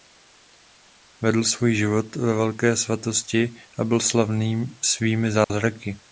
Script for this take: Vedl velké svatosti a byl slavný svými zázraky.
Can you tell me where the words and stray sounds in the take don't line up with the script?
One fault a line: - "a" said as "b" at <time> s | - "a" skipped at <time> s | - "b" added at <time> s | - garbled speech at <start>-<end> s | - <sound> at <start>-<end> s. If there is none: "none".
- "svůj život ve" added at 1.4 s
- dropout at 5.4-5.5 s